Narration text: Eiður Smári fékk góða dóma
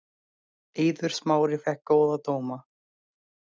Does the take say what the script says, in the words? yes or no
yes